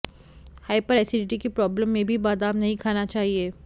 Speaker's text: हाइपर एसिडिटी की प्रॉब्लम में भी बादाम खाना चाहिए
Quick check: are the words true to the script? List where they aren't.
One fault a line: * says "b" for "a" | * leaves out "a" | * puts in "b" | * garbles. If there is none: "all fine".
* puts in "नहीं"